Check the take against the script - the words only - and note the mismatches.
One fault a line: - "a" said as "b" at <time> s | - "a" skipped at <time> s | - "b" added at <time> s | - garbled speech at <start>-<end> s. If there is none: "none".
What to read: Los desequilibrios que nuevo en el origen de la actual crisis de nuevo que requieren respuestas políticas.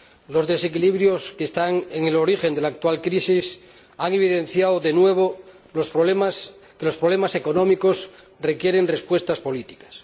- "nuevo" said as "están" at 1.4 s
- "han evidenciado" added at 4.0 s
- "los problemas económicos" added at 5.8 s